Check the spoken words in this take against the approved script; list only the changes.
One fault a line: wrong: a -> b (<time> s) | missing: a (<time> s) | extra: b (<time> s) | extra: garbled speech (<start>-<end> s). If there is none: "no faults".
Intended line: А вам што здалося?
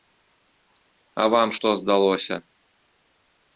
no faults